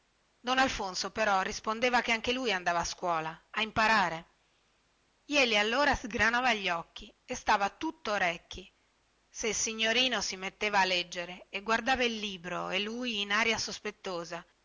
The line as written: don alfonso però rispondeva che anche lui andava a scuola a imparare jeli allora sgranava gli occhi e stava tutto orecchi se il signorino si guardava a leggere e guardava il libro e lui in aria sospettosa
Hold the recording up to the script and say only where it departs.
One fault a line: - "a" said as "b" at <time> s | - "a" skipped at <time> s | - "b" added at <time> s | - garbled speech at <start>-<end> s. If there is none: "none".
- "guardava" said as "metteva" at 10.4 s